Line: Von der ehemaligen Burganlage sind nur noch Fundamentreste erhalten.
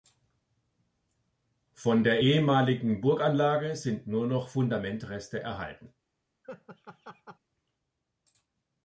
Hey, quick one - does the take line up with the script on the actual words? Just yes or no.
yes